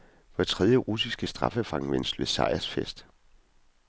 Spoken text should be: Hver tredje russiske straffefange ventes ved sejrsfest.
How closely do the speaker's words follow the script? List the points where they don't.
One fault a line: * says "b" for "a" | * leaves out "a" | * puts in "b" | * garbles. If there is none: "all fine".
all fine